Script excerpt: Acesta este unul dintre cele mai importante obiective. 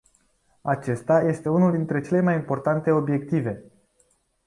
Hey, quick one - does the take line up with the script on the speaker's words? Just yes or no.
yes